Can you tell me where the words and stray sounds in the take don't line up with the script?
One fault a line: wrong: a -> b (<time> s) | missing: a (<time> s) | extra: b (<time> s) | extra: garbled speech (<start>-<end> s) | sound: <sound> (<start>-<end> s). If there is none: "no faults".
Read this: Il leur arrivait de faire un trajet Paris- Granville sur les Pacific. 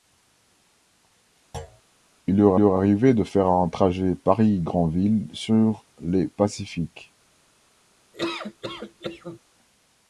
sound: thud (1.5-1.8 s)
extra: leur (2.6 s)
sound: laugh (8.1-9.4 s)